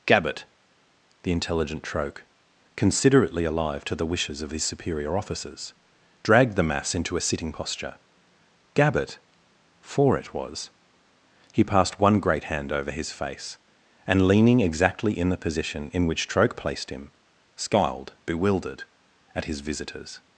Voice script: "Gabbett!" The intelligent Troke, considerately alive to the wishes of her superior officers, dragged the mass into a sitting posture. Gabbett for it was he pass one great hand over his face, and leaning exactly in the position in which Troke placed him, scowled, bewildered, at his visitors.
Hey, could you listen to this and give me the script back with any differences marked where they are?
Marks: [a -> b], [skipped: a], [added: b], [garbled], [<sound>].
"Gabbett!" The intelligent Troke, considerately alive to the wishes of [her -> his] superior officers, dragged the mass into a sitting posture. Gabbett for it was he [pass -> passed] one great hand over his face, and leaning exactly in the position in which Troke placed him, scowled, bewildered, at his visitors.